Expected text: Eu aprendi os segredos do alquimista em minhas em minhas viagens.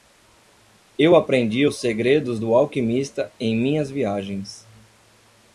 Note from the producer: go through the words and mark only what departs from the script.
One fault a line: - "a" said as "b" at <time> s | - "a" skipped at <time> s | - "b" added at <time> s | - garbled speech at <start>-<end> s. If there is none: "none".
- "em minhas" skipped at 3.9 s